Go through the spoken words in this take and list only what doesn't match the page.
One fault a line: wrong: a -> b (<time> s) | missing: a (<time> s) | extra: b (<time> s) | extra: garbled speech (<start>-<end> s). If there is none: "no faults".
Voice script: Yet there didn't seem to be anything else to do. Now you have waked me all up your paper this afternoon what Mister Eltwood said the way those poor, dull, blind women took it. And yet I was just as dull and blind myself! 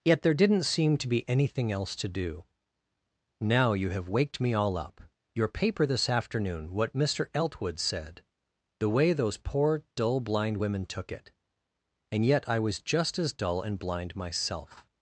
no faults